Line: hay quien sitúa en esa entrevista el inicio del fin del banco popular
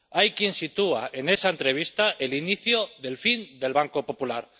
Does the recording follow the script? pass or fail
pass